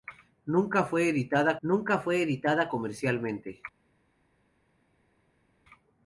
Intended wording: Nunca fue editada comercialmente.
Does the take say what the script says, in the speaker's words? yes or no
no